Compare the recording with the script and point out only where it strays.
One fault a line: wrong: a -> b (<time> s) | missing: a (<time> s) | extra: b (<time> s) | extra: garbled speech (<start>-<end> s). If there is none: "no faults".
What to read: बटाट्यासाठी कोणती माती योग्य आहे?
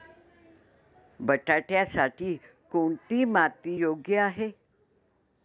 no faults